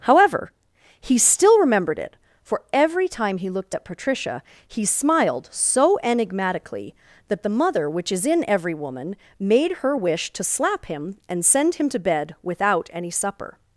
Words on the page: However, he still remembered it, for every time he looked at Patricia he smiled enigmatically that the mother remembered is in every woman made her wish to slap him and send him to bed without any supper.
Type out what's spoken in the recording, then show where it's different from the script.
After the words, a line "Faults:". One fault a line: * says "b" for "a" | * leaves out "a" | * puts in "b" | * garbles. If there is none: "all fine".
However, he still remembered it, for every time he looked at Patricia he smiled so enigmatically that the mother which is in every woman made her wish to slap him and send him to bed without any supper.
Faults:
* puts in "so"
* says "which" for "remembered"